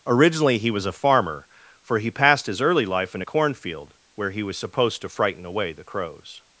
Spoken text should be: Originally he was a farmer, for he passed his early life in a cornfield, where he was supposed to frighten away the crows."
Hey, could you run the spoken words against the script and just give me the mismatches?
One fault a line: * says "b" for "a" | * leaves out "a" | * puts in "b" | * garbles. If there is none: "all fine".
all fine